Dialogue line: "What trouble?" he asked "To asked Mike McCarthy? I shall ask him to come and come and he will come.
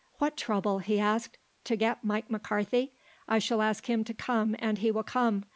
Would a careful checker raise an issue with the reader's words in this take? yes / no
yes